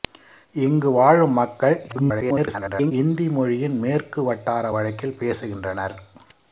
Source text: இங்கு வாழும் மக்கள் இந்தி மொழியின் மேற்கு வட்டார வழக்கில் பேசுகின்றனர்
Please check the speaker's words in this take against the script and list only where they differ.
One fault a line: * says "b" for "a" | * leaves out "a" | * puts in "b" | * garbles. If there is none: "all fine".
* garbles